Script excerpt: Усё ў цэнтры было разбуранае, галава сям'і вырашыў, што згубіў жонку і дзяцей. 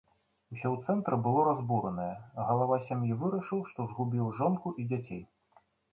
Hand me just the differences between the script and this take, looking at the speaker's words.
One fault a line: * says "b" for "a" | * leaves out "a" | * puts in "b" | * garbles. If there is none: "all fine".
all fine